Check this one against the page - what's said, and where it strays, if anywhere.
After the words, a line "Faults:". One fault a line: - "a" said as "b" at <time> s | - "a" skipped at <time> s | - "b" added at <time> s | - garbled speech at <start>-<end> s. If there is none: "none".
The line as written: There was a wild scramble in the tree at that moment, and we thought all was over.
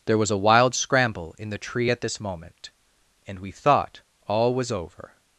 There was a wild scramble in the tree at this moment, and we thought all was over.
Faults:
- "that" said as "this" at 2.0 s